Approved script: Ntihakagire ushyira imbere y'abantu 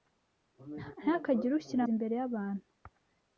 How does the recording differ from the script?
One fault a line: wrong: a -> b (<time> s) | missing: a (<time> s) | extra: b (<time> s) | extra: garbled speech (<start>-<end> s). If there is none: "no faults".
no faults